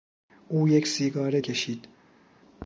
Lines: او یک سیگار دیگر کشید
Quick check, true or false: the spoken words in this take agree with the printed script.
false